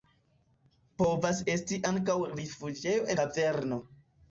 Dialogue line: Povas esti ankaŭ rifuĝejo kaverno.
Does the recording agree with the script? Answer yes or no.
yes